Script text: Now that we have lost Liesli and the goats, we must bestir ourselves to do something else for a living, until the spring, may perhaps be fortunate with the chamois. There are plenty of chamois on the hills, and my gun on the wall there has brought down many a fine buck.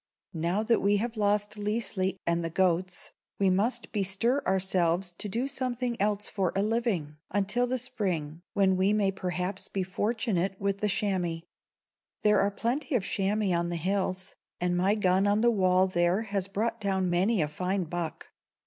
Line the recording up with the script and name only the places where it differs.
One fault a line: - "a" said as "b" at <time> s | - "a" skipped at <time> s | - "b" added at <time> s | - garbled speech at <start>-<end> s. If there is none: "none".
- "when we" added at 8.5 s